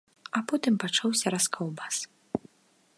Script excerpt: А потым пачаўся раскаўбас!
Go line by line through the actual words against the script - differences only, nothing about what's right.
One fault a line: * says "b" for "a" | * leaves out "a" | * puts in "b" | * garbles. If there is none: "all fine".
all fine